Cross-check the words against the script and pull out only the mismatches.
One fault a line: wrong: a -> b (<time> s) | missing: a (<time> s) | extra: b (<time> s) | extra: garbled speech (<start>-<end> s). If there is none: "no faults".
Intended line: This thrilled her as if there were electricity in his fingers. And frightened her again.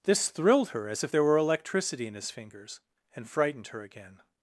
no faults